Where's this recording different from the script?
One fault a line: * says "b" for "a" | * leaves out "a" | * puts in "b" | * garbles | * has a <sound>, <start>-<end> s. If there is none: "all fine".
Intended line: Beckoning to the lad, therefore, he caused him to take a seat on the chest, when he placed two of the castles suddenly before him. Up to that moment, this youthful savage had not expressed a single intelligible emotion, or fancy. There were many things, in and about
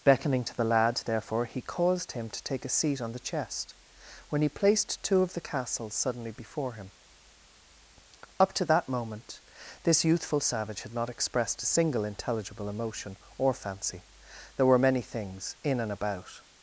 all fine